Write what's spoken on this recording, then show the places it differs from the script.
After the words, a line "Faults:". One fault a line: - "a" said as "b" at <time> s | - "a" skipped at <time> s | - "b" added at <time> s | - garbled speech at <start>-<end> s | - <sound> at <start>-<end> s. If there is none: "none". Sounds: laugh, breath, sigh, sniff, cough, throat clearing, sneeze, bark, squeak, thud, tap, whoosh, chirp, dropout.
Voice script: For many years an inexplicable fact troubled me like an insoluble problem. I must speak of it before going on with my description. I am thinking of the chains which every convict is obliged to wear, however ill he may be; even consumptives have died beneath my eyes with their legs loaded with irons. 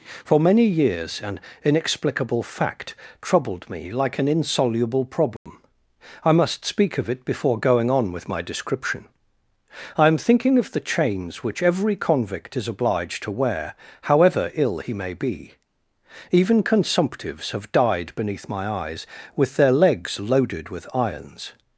For many years an inexplicable fact troubled me like an insoluble problem. I must speak of it before going on with my description. I am thinking of the chains which every convict is obliged to wear, however ill he may be; even consumptives have died beneath my eyes with their legs loaded with irons.
Faults:
- dropout at 5.4-5.5 s